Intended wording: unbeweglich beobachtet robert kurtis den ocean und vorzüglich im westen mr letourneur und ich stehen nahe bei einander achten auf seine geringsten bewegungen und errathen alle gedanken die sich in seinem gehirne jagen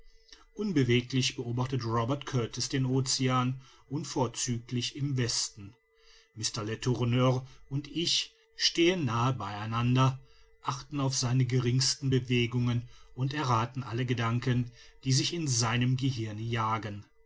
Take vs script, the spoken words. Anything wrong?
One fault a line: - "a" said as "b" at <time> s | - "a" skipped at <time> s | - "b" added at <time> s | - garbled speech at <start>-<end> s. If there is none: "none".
none